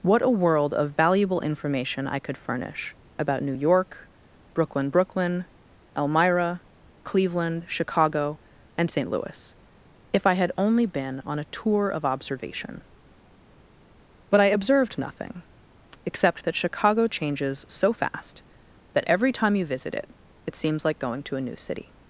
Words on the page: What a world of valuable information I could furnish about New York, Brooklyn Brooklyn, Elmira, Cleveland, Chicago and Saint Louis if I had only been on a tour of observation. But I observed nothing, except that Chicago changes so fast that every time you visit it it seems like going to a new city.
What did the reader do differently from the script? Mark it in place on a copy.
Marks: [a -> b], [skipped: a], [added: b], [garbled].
What a world of valuable information I could furnish about New York, Brooklyn Brooklyn, Elmira, Cleveland, Chicago and Saint Louis if I had only been on a tour of observation. But I observed nothing, except that Chicago changes so fast that every time you visit it it seems like going to a new city.